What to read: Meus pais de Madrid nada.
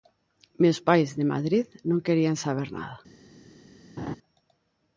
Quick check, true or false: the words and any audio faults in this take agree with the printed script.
false